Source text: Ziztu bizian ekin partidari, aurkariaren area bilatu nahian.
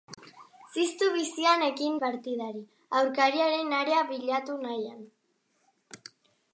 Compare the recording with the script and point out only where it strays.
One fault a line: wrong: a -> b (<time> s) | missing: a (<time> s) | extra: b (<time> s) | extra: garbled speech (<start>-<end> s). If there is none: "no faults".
no faults